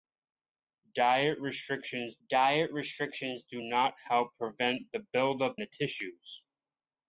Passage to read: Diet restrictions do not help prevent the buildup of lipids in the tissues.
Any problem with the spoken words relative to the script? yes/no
yes